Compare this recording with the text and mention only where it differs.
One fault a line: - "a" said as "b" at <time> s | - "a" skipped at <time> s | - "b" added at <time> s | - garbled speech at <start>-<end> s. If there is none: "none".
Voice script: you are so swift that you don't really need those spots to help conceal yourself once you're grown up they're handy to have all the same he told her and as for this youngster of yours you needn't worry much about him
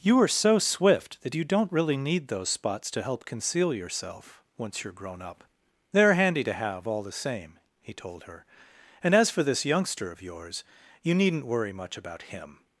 none